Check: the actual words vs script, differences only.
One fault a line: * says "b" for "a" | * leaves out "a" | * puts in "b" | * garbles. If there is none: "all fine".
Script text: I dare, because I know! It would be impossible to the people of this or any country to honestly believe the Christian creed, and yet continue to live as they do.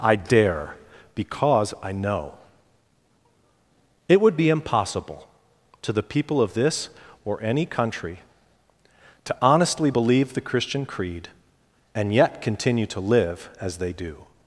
all fine